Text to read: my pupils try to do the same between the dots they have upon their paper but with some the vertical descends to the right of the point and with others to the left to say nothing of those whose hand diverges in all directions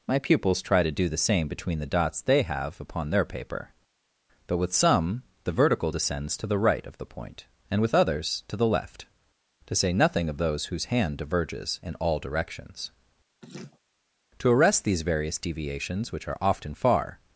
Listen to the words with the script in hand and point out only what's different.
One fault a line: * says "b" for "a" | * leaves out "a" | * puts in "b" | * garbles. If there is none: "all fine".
* puts in "to arrest these various deviations which are often far"